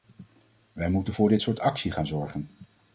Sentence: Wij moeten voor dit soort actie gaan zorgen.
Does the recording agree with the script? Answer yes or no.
yes